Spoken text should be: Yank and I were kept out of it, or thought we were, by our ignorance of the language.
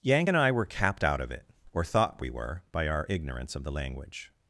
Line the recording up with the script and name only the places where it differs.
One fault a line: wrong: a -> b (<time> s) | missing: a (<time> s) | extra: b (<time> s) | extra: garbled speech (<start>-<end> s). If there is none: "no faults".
wrong: kept -> capped (0.6 s)